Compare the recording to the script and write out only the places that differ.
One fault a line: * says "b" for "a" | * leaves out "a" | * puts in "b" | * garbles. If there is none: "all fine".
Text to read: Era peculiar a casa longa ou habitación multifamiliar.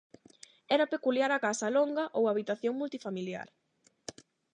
all fine